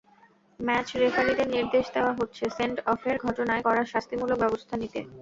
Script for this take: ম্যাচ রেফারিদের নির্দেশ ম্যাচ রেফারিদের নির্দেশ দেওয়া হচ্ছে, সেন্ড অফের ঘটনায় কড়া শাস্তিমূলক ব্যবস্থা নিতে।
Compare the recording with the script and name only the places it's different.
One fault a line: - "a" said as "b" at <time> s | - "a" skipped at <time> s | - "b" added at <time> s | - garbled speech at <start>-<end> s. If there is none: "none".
- "ম্যাচ রেফারিদের নির্দেশ" skipped at 1.9 s